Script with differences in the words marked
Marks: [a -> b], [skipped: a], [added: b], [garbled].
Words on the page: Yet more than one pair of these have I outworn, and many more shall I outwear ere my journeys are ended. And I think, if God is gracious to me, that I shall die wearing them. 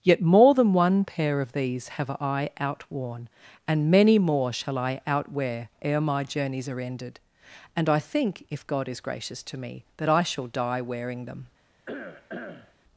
Yet more than one pair of these have I outworn, and many more shall I outwear ere my journeys are ended. And I think, if God is gracious to me, that I shall die wearing them.